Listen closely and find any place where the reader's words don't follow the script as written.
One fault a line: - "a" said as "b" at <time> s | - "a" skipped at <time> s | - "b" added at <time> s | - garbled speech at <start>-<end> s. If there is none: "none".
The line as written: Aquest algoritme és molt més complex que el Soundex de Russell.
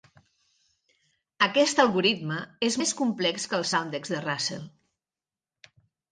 - "molt" skipped at 2.8 s